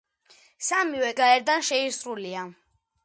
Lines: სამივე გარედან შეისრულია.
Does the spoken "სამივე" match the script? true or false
true